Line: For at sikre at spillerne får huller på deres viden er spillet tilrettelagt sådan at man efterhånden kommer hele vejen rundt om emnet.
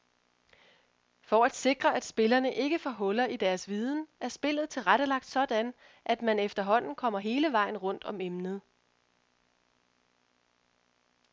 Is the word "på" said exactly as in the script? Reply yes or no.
no